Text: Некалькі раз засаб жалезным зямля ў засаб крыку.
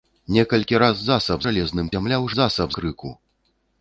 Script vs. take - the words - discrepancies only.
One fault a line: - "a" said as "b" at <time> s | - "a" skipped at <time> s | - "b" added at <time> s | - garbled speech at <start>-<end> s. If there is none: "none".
none